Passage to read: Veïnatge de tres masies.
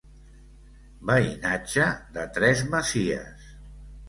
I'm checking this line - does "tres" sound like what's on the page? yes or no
yes